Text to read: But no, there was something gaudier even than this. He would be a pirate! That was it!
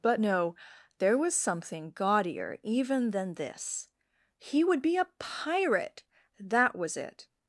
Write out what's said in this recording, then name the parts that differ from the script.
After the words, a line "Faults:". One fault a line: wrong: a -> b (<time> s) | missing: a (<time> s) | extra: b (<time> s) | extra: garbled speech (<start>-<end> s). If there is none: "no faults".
But no, there was something gaudier even than this. He would be a pirate! That was it!
Faults:
no faults